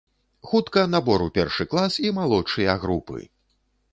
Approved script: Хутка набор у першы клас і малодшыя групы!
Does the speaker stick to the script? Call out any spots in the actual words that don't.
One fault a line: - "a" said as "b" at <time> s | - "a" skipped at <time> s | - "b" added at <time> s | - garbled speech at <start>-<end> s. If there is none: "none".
none